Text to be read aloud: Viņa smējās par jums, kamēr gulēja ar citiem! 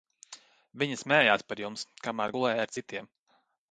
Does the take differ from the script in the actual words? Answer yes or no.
no